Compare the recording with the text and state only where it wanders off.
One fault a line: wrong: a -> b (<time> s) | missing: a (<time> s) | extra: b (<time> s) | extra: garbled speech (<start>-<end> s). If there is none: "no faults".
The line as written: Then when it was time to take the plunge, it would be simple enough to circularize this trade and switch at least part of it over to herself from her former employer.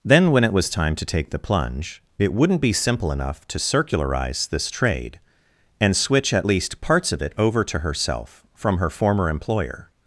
wrong: would -> wouldn't (2.3 s)
wrong: part -> parts (6.8 s)